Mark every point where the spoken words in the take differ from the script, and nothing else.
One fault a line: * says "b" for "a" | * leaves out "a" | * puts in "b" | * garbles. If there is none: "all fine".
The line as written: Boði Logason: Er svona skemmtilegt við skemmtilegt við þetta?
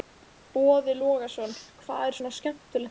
* puts in "Hvað"
* leaves out "skemmtilegt við"